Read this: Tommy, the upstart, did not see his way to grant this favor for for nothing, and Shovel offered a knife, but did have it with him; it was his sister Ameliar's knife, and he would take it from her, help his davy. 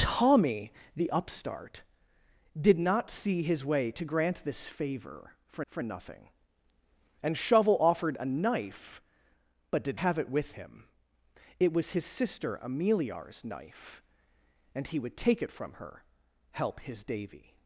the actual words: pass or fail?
pass